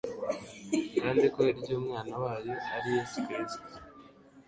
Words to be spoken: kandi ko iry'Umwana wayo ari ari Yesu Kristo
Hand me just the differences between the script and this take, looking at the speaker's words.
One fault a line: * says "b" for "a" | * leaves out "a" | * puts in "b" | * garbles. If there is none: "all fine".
* leaves out "ari"